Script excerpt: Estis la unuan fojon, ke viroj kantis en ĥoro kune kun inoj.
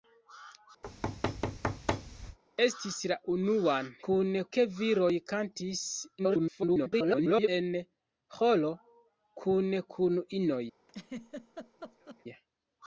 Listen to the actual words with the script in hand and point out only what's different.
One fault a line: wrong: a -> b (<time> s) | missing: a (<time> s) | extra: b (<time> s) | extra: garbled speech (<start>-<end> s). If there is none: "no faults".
wrong: fojon -> kune (4.1 s)
extra: garbled speech (6.2-7.5 s)